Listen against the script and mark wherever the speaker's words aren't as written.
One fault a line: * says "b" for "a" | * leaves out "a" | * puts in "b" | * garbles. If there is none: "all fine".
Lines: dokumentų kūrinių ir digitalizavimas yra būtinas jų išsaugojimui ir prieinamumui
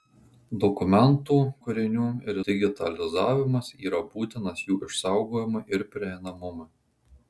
all fine